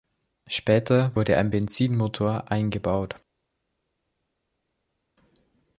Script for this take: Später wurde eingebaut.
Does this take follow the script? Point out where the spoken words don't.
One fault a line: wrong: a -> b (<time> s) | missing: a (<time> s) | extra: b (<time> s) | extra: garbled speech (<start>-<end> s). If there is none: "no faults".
extra: ein Benzinmotor (1.4 s)